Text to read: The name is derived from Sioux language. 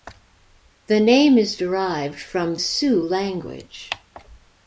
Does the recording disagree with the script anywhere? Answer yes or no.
no